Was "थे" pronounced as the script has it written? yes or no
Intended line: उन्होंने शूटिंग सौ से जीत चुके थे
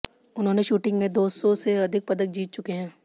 no